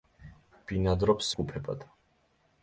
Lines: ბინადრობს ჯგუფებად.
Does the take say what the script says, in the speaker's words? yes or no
yes